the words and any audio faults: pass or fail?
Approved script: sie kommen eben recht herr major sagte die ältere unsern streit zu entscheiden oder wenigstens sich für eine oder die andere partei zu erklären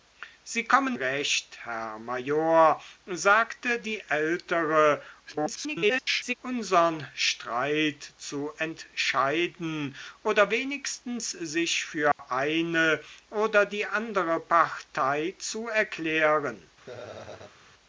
fail